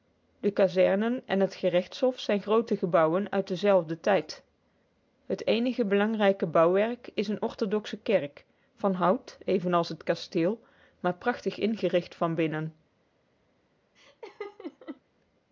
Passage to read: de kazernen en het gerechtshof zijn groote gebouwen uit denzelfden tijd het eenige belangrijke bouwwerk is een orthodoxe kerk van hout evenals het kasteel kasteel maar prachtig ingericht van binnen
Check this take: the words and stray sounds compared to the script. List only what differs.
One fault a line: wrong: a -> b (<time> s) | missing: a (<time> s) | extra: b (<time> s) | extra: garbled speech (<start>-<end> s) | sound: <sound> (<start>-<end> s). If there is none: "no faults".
missing: kasteel (10.6 s)
sound: laugh (14.0-15.0 s)